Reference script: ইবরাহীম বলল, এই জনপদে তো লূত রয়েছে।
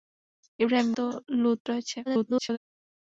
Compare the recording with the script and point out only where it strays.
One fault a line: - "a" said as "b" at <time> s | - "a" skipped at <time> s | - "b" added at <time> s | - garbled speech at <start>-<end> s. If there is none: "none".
- "বলল এই জনপদে" skipped at 0.9 s
- garbled speech at 2.1-2.6 s